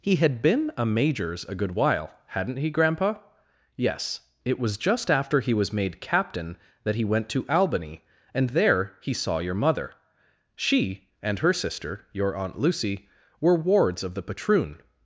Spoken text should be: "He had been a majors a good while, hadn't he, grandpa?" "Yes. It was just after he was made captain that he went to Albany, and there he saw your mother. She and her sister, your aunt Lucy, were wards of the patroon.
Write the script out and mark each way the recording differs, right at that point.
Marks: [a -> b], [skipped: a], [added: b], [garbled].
"He had been a majors a good while, hadn't he, grandpa?" "Yes. It was just after he was made captain that he went to Albany, and there he saw your mother. She and her sister, your aunt Lucy, were wards of the patroon.